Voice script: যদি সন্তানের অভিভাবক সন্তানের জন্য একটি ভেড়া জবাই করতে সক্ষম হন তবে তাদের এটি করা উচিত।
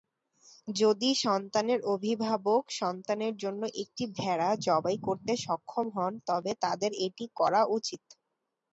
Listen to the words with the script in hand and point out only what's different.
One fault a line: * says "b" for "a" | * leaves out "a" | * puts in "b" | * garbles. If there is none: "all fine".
all fine